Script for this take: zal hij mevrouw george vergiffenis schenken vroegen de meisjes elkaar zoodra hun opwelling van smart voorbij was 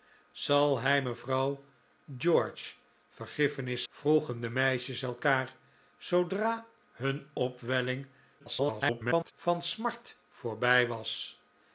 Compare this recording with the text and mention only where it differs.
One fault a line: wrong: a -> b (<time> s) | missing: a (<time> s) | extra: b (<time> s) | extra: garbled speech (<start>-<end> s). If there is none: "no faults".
missing: schenken (3.8 s)
extra: garbled speech (8.4-9.3 s)